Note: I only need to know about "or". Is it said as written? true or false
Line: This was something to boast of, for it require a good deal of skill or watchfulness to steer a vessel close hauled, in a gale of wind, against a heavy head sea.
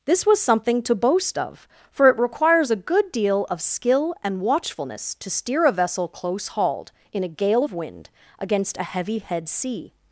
false